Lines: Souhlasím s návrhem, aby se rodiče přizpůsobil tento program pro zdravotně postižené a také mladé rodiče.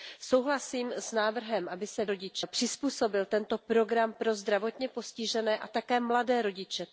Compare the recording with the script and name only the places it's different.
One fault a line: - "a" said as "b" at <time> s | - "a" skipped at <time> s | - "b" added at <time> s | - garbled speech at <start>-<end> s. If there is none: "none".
none